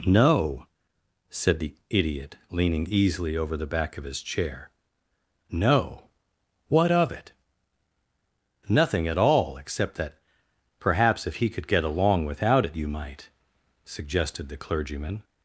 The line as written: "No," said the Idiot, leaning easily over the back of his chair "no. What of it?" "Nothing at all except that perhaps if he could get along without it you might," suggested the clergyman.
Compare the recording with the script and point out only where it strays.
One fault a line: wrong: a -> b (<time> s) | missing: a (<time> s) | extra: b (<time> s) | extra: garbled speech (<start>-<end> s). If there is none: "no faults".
no faults